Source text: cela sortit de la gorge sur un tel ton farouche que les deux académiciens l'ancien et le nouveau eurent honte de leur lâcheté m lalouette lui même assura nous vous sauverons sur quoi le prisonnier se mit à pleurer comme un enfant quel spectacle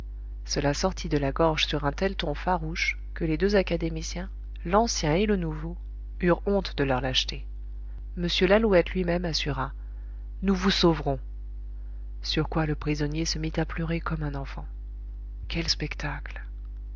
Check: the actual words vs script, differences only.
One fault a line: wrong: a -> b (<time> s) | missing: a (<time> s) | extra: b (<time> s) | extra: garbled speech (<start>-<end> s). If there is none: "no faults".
no faults